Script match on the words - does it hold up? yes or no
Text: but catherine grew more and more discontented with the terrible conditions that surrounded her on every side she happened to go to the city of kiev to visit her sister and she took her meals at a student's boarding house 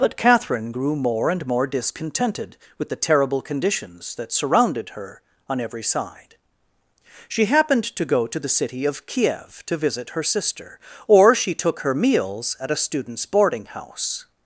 no